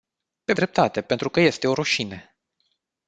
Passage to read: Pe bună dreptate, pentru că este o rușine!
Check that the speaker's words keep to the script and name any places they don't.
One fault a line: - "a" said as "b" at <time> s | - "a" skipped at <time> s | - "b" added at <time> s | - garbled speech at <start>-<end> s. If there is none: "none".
- "bună" skipped at 0.5 s